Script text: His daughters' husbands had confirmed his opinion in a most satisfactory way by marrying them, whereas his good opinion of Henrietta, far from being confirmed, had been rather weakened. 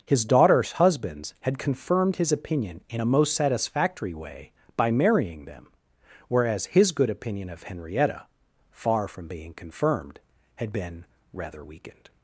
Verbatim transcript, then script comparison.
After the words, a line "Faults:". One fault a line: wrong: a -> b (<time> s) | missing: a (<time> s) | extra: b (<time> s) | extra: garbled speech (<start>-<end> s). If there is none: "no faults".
His daughters' husbands had confirmed his opinion in a most satisfactory way by marrying them, whereas his good opinion of Henrietta, far from being confirmed, had been rather weakened.
Faults:
no faults